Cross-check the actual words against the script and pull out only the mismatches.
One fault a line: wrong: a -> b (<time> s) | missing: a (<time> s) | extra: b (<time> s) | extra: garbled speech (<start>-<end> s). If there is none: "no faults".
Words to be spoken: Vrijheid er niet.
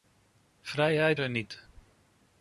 no faults